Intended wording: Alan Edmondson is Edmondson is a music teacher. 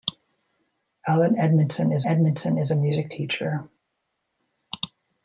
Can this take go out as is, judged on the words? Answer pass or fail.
pass